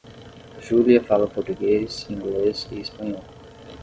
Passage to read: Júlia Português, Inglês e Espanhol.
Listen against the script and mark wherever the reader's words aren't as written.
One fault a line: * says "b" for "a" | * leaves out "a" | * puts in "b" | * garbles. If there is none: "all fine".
* puts in "fala"